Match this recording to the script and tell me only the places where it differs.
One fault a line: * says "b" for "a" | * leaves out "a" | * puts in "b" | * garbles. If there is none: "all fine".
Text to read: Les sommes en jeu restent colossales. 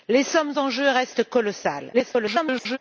* garbles